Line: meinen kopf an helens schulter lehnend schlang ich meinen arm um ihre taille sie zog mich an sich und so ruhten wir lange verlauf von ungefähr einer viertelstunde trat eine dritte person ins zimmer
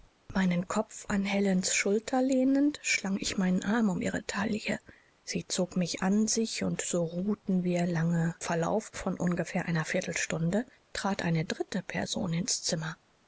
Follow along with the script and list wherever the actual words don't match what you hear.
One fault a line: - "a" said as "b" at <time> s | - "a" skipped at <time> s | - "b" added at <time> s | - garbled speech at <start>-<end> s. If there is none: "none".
none